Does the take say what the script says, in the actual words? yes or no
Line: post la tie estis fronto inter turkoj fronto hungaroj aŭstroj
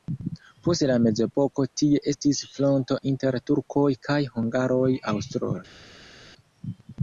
no